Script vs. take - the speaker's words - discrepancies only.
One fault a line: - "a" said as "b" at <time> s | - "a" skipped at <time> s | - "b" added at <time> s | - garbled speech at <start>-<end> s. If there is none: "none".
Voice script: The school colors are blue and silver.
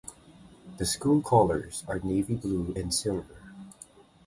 - "navy" added at 2.0 s